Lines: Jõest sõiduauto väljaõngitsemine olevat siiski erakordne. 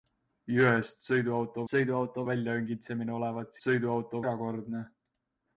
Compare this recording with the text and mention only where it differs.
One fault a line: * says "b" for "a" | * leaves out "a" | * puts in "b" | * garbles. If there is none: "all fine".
* puts in "sõiduauto"
* says "sõiduauto" for "siiski"